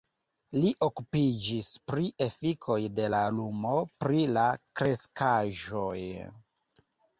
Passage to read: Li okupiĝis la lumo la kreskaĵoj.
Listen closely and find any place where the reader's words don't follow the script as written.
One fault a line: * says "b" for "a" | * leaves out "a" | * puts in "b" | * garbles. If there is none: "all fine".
* puts in "pri efikoj de"
* puts in "pri"